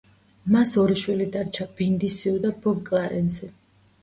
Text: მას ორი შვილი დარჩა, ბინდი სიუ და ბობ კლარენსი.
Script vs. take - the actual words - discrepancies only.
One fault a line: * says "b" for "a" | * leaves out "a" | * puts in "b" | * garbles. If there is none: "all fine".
all fine